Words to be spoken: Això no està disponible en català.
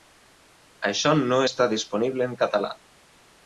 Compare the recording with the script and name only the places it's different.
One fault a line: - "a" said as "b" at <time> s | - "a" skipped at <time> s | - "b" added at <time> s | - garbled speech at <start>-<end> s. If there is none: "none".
none